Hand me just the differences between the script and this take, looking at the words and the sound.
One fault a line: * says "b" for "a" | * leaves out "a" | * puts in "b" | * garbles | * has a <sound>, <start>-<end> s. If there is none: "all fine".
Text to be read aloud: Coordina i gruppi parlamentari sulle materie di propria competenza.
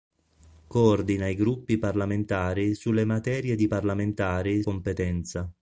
* says "parlamentari" for "propria"